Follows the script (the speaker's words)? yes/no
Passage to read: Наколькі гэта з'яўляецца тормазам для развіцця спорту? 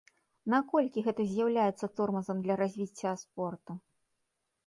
yes